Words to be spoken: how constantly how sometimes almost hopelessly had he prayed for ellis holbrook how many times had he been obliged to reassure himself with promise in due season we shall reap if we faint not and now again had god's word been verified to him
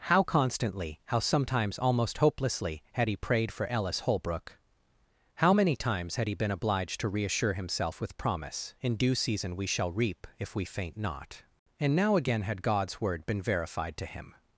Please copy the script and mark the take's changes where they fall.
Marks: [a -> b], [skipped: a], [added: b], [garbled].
how constantly how sometimes almost hopelessly had he prayed for ellis holbrook how many times had he been obliged to reassure himself with promise in due season we shall reap if we faint not and now again had god's word been verified to him